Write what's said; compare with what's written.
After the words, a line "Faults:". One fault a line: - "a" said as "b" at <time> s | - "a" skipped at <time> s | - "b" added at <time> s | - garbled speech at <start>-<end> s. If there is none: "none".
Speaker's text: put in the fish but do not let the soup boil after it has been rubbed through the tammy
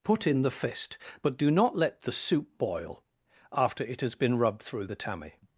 put in the fist but do not let the soup boil after it has been rubbed through the tammy
Faults:
- "fish" said as "fist" at 0.5 s